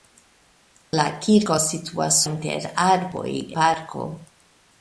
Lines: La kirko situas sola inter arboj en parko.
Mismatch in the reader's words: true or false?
true